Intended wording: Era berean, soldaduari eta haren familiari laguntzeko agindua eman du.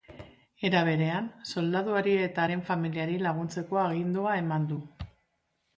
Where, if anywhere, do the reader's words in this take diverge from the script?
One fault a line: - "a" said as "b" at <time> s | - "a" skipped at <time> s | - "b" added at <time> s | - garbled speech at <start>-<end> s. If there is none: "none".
none